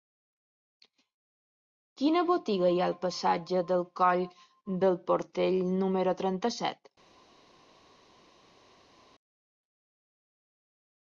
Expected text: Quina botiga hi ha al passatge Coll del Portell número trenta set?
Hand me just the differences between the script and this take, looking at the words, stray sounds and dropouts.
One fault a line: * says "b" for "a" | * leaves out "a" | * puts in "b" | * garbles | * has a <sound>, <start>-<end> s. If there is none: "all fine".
* puts in "del"